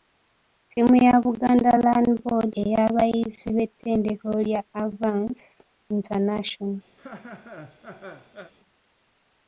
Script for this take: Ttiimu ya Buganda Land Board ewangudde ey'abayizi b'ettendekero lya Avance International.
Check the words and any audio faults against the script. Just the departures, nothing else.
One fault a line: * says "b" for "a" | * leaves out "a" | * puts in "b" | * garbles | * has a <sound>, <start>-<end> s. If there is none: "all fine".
* leaves out "ewangudde"
* has a laugh, 7.0-8.5 s